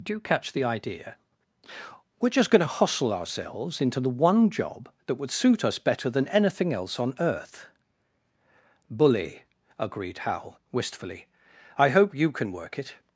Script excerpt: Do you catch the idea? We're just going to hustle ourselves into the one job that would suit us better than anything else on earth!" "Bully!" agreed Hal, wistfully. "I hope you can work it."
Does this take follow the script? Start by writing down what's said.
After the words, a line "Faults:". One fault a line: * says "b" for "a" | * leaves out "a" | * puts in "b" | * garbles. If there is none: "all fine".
Do you catch the idea? We're just going to hustle ourselves into the one job that would suit us better than anything else on earth!" "Bully!" agreed Hal, wistfully. "I hope you can work it."
Faults:
all fine